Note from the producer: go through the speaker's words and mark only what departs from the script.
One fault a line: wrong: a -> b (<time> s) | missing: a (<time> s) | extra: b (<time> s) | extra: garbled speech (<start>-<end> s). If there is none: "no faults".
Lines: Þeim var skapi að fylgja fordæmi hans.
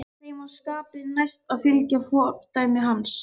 extra: næst (1.2 s)